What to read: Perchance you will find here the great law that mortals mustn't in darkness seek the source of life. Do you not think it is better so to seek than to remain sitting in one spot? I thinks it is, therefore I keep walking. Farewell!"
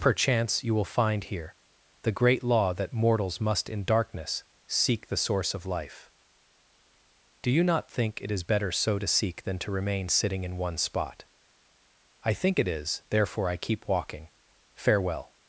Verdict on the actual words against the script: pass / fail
fail